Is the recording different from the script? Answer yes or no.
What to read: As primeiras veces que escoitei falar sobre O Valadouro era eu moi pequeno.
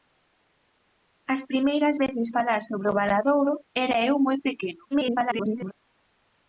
yes